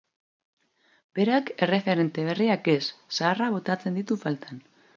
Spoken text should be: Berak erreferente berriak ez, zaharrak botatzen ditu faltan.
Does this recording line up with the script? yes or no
yes